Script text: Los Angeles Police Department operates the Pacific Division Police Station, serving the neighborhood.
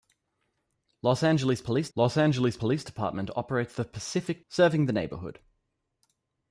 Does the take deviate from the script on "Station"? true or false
true